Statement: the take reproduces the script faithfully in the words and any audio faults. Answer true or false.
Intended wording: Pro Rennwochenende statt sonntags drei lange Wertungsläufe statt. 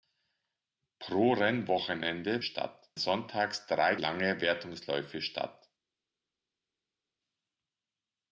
true